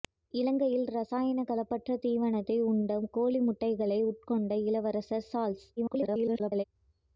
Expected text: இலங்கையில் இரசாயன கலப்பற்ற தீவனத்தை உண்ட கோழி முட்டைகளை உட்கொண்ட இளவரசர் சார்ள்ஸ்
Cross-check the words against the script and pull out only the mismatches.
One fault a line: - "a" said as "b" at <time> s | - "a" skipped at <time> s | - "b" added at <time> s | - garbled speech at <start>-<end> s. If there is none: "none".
- garbled speech at 5.8-6.6 s